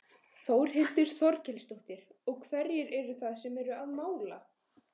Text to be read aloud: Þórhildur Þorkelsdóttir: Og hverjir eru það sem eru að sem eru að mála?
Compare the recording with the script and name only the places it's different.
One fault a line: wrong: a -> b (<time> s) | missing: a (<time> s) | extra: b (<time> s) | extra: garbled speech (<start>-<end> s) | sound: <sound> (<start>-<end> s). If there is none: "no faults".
missing: sem eru að (3.9 s)